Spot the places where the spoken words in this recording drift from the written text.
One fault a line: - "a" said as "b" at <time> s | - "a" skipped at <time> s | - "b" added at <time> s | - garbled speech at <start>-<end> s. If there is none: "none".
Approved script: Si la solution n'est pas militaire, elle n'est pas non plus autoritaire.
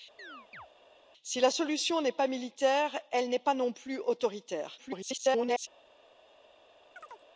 - garbled speech at 4.8-5.7 s